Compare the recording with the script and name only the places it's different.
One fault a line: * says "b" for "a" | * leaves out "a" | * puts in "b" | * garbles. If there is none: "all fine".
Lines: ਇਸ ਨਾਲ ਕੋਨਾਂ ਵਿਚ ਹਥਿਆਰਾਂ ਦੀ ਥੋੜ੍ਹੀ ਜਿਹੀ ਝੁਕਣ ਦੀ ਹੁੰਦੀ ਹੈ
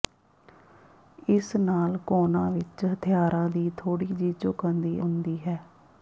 all fine